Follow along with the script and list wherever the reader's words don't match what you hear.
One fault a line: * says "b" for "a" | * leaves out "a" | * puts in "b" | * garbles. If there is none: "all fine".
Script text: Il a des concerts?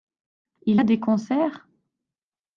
all fine